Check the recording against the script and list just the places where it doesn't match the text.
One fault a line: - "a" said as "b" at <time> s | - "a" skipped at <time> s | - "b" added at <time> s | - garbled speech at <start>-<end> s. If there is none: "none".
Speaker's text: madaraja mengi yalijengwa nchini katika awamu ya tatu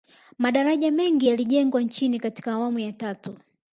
none